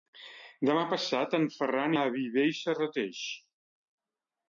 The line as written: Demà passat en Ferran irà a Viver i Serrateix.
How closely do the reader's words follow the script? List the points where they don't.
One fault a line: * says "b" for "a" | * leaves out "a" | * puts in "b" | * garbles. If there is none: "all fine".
* leaves out "irà"